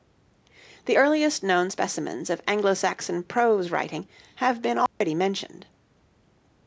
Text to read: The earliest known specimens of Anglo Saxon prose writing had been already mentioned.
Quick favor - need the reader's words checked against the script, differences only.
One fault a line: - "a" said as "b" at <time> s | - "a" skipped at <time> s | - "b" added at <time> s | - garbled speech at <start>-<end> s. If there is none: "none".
- "had" said as "have" at 4.3 s